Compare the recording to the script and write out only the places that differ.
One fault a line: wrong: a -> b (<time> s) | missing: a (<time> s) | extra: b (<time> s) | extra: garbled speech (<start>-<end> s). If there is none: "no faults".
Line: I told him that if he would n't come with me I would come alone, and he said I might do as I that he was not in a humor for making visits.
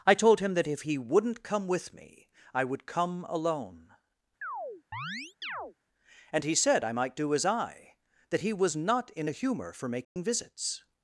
no faults